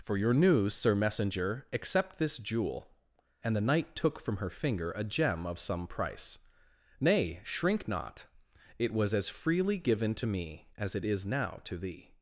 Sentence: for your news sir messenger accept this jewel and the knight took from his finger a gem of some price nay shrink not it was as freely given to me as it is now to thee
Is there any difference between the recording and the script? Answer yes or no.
yes